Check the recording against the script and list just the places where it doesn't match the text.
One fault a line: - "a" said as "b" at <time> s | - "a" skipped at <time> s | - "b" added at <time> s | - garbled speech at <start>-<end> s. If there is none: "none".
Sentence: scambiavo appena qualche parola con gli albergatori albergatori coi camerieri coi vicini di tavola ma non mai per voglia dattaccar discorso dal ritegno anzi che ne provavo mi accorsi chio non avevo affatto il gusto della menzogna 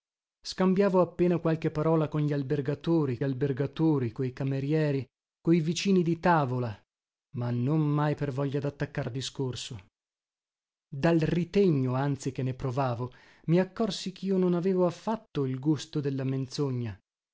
none